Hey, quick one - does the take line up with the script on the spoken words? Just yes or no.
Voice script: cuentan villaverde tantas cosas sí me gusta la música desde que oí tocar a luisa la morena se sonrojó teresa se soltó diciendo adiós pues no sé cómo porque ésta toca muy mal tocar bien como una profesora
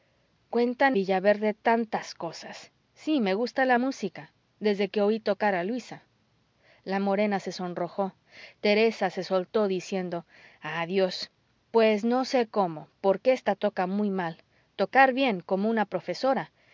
yes